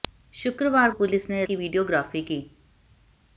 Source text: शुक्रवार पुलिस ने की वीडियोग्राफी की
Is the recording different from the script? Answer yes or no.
no